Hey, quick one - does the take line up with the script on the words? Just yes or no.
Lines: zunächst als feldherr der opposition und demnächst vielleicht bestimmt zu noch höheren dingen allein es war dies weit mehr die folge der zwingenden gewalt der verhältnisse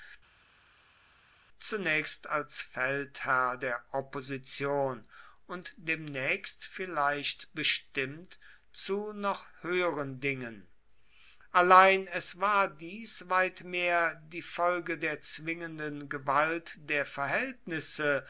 yes